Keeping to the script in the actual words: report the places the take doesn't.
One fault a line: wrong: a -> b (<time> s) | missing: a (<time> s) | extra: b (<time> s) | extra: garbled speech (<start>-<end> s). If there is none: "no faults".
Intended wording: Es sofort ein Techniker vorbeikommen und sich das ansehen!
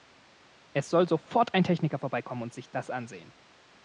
extra: soll (0.9 s)